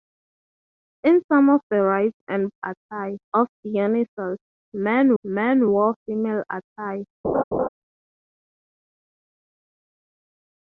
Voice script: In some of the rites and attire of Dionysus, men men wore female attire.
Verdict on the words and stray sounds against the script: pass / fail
fail